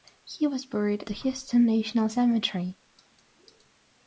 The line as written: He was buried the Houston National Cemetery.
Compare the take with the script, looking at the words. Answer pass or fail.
pass